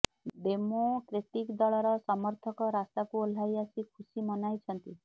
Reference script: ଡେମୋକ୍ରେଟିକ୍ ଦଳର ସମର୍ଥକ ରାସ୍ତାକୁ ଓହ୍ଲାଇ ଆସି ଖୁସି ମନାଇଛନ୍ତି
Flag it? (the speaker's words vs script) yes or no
no